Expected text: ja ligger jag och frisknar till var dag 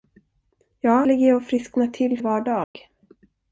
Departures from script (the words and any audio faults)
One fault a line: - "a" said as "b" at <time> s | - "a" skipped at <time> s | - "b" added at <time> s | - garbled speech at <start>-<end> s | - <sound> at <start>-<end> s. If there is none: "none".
- dropout at 2.6-2.7 s